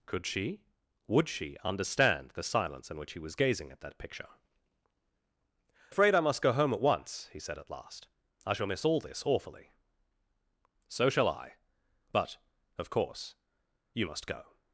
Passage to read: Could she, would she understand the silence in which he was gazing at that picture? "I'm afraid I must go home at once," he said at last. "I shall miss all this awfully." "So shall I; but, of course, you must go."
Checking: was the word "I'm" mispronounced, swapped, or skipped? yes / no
yes